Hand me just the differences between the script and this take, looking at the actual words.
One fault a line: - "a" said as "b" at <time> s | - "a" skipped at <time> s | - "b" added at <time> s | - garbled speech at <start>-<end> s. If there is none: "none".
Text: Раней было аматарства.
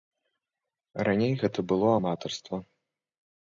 - "гэта" added at 1.4 s